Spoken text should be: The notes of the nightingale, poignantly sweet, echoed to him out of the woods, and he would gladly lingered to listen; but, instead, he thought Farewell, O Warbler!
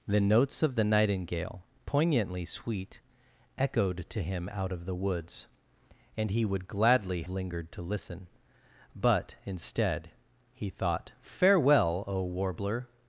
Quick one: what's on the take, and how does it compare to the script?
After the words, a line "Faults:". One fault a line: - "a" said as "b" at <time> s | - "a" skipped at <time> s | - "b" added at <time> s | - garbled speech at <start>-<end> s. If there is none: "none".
The notes of the nightingale, poignantly sweet, echoed to him out of the woods, and he would gladly lingered to listen; but, instead, he thought Farewell, O Warbler!
Faults:
none